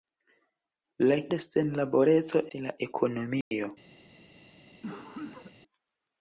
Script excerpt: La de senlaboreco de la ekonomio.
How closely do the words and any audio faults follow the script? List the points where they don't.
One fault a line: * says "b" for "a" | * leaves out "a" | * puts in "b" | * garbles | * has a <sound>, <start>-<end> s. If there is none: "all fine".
* has a dropout, 3.4-3.5 s
* has a cough, 4.8-5.6 s